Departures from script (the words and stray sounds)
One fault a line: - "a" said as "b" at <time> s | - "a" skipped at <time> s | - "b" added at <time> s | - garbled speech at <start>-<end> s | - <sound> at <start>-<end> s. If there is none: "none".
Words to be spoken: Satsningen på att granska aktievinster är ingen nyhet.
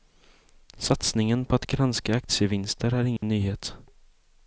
- dropout at 3.2-3.2 s